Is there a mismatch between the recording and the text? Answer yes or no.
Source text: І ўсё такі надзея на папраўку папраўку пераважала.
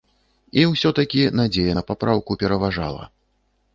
yes